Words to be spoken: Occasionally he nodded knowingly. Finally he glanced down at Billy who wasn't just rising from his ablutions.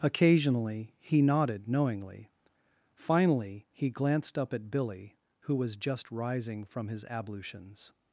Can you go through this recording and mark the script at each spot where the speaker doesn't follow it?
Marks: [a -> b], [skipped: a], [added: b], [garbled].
Occasionally he nodded knowingly. Finally he glanced [down -> up] at Billy who [wasn't -> was] just rising from his ablutions.